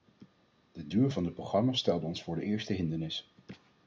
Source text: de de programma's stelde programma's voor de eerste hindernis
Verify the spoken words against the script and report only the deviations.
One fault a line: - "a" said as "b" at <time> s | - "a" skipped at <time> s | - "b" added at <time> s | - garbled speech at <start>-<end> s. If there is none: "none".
- "duur van" added at 0.9 s
- "programma's" said as "ons" at 2.1 s